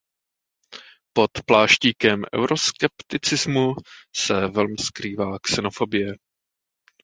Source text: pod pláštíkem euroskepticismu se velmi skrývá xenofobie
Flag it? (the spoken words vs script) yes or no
no